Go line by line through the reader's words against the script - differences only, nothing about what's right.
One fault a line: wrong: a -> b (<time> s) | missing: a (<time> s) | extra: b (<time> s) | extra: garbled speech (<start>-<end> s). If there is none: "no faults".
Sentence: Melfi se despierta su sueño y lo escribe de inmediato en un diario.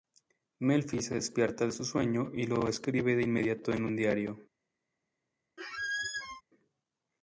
no faults